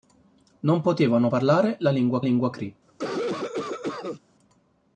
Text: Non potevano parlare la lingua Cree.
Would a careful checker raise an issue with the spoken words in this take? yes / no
yes